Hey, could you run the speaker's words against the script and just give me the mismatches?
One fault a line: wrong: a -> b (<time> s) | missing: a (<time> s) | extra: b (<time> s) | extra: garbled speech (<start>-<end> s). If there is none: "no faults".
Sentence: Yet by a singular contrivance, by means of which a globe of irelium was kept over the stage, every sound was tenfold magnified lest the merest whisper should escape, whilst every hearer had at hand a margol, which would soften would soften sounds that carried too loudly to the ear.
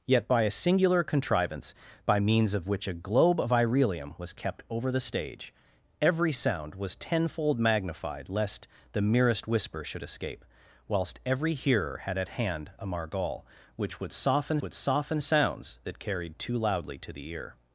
no faults